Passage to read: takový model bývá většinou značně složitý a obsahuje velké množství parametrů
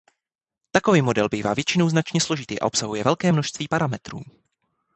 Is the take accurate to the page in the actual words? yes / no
yes